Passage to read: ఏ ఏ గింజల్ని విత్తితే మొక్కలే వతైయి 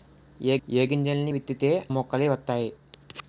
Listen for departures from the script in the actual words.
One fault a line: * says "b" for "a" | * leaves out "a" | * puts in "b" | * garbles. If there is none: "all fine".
all fine